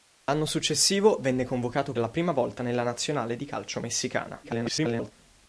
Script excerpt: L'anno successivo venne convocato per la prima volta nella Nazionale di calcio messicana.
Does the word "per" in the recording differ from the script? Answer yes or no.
yes